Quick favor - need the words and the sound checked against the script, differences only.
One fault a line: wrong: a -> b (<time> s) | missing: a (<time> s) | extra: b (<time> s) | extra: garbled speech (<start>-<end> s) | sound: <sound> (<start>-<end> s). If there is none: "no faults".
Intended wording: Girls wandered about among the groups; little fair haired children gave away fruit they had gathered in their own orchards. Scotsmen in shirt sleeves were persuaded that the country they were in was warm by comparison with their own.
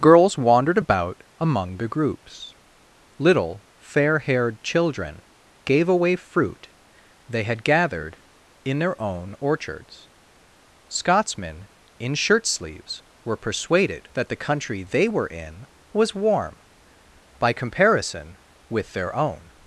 no faults